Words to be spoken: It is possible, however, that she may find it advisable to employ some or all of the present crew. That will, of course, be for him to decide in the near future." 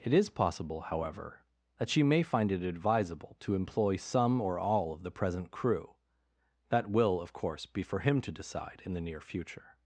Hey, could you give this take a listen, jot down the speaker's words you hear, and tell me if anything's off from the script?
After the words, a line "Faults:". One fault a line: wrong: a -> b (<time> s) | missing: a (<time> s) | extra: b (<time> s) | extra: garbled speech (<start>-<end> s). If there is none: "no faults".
It is possible, however, that she may find it advisable to employ some or all of the present crew. That will, of course, be for him to decide in the near future."
Faults:
no faults